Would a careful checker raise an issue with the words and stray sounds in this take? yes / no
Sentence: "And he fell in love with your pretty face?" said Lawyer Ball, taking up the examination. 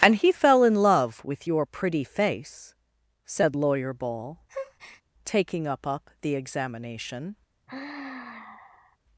yes